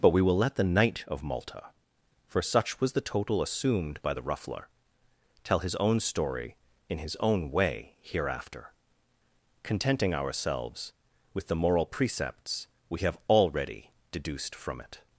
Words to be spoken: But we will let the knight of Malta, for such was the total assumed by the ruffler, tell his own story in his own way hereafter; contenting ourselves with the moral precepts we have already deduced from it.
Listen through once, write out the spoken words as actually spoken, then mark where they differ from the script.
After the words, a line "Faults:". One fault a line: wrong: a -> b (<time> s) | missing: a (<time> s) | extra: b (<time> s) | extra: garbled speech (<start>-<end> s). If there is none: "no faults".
But we will let the knight of Malta, for such was the total assumed by the ruffler, tell his own story in his own way hereafter; contenting ourselves with the moral precepts we have already deduced from it.
Faults:
no faults